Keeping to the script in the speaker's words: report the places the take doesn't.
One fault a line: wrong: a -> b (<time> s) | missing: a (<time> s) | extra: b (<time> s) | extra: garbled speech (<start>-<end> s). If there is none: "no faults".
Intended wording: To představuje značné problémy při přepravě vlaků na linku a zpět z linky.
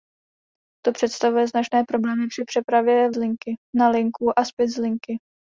wrong: vlaků -> linky (3.2 s)